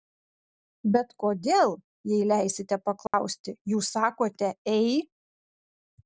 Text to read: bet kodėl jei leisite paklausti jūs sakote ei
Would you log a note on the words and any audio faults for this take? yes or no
yes